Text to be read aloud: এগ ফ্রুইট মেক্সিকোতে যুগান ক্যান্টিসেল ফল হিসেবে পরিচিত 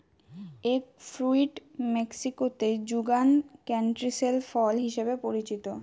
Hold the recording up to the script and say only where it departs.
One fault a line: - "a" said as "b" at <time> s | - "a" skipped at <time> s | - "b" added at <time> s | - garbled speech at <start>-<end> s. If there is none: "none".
none